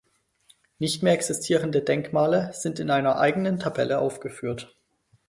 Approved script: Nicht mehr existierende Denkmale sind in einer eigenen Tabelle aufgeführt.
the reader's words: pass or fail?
pass